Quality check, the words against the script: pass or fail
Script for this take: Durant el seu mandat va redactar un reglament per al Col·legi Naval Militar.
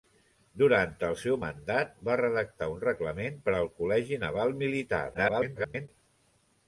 fail